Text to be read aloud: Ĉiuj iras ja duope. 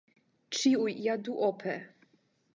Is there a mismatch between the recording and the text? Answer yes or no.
yes